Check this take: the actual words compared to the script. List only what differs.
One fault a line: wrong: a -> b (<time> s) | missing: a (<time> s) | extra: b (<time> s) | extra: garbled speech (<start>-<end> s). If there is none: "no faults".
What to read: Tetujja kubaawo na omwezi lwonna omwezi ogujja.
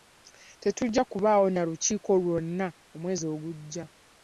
wrong: omwezi -> lukiiko (1.7 s)